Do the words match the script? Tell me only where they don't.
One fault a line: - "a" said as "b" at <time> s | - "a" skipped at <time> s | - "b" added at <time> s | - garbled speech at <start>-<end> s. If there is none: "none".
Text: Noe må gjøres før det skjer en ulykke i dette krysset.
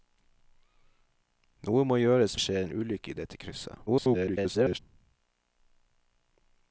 - "før" skipped at 2.4 s
- garbled speech at 3.9-4.8 s